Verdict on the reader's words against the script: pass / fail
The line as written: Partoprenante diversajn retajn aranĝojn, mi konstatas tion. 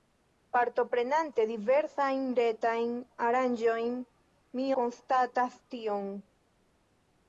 pass